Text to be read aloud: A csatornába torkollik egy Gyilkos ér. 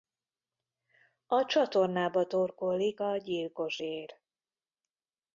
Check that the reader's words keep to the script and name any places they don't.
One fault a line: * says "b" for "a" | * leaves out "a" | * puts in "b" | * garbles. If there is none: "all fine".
* says "a" for "egy"